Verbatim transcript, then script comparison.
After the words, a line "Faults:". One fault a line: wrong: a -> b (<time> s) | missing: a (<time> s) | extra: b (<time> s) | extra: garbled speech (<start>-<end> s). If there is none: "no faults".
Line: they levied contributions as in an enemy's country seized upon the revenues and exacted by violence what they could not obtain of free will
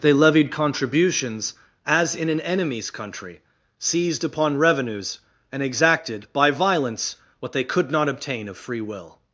they levied contributions as in an enemy's country seized upon revenues and exacted by violence what they could not obtain of free will
Faults:
missing: the (4.6 s)